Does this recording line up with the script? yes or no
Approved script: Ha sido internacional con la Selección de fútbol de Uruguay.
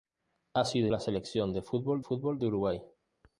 no